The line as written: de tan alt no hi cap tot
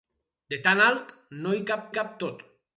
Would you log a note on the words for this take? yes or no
yes